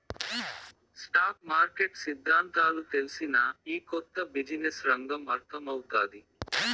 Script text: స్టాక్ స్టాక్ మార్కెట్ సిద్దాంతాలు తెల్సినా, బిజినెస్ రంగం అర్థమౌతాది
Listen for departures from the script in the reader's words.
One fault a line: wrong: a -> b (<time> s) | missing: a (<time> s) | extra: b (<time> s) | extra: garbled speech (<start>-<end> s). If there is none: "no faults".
missing: స్టాక్ (1.4 s)
extra: ఈ కొత్త (3.7 s)